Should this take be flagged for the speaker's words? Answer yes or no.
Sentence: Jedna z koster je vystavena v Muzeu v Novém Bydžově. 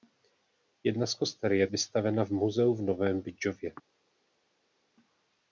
no